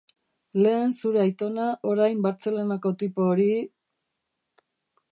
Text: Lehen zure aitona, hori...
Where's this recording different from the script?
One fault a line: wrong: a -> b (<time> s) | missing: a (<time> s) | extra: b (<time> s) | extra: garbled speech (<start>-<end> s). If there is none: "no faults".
extra: orain Bartzelonako tipo (1.9 s)